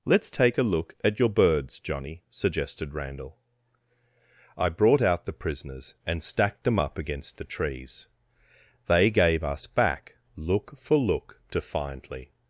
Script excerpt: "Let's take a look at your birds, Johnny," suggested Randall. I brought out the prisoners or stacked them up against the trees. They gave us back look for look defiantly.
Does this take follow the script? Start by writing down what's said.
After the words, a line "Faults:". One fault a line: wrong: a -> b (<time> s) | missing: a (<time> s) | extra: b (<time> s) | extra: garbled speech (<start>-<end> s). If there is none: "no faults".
"Let's take a look at your birds, Johnny," suggested Randall. I brought out the prisoners and stacked them up against the trees. They gave us back look for look defiantly.
Faults:
wrong: or -> and (6.1 s)